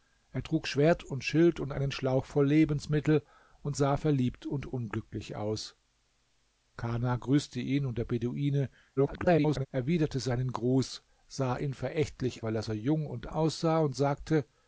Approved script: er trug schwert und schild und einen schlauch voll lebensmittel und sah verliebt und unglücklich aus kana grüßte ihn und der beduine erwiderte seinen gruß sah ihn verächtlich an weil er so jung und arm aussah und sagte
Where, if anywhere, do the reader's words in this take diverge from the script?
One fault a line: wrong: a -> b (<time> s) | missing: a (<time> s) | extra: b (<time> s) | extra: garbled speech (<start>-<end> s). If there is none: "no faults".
extra: garbled speech (9.0-9.7 s)
missing: an (12.4 s)
missing: arm (13.3 s)